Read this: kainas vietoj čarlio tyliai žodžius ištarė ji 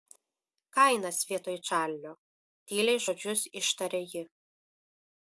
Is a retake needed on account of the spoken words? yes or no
no